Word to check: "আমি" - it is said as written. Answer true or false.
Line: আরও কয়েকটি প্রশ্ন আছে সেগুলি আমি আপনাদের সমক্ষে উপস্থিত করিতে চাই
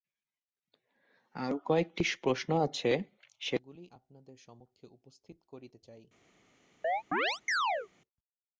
false